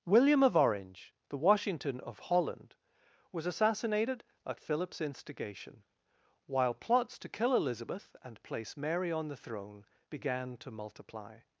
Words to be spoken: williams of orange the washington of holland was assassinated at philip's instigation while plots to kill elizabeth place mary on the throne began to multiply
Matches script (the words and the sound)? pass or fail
fail